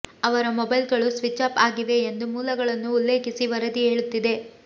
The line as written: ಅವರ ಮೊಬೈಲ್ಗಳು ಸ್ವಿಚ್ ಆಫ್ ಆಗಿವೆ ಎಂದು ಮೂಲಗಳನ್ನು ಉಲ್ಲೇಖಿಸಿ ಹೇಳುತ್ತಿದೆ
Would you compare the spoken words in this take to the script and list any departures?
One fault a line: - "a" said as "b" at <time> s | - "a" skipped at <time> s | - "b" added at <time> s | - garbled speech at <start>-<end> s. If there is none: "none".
- "ವರದಿ" added at 3.5 s